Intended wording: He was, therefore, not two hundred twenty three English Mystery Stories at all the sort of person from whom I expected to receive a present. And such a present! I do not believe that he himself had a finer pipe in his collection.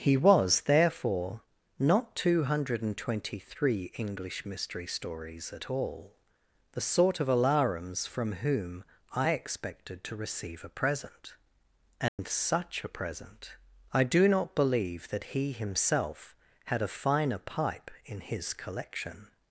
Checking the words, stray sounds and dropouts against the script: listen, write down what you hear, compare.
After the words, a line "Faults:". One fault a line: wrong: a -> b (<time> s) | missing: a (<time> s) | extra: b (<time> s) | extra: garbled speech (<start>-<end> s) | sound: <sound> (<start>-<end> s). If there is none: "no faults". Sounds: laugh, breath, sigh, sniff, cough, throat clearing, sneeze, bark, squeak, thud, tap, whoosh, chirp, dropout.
He was, therefore, not two hundred twenty three English Mystery Stories at all the sort of alarums from whom I expected to receive a present. And such a present! I do not believe that he himself had a finer pipe in his collection.
Faults:
wrong: person -> alarums (7.3 s)
sound: dropout (12.1-12.2 s)